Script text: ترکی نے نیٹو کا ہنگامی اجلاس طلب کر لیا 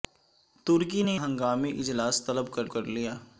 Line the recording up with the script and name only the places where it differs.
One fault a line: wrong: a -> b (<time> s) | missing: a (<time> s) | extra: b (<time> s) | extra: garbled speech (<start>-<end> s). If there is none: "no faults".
missing: نیٹو کا (1.2 s)
extra: کر (2.7 s)